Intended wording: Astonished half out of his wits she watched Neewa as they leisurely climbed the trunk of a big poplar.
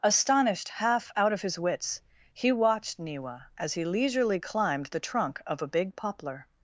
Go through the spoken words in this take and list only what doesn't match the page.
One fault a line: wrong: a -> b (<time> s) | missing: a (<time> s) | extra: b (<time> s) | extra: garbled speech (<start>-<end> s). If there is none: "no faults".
wrong: she -> he (2.3 s)
wrong: they -> he (3.7 s)